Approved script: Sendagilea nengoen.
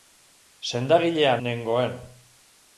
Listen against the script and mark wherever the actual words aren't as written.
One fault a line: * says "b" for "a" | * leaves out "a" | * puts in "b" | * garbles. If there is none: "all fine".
all fine